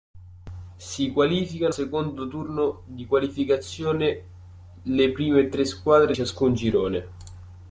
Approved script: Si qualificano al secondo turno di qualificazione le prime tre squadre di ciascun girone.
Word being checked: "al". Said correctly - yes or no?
no